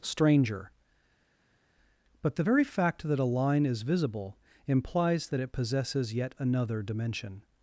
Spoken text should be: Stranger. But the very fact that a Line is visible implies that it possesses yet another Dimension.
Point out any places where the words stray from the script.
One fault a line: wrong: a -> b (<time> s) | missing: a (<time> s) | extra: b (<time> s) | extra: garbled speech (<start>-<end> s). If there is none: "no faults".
no faults